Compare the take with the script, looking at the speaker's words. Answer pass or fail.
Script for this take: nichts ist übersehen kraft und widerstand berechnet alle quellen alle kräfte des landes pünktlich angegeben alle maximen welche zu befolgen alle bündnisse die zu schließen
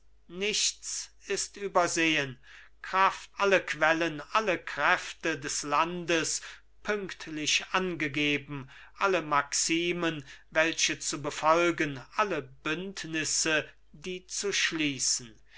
fail